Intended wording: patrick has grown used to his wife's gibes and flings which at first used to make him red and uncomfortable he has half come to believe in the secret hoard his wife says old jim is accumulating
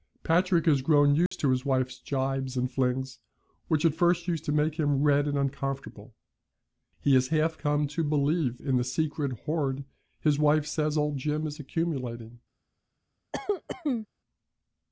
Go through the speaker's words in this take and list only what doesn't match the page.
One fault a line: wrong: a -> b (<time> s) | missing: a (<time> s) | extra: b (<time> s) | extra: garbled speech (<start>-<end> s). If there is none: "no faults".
no faults